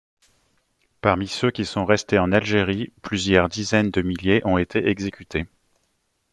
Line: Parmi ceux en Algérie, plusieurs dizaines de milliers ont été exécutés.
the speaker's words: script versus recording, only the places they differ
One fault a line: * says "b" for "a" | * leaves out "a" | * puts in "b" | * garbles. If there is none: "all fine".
* puts in "qui sont restés"